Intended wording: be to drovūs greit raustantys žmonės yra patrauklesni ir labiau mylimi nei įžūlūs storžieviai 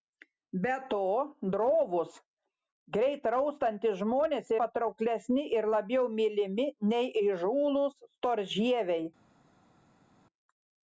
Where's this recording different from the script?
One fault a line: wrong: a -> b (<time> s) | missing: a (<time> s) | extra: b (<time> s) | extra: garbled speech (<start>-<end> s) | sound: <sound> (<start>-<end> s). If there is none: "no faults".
missing: yra (4.5 s)